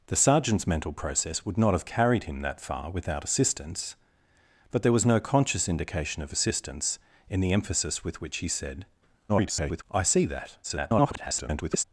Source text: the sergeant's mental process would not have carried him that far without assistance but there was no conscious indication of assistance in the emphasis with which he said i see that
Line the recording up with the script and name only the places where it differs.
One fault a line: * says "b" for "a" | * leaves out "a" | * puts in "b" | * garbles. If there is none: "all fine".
* garbles
* garbles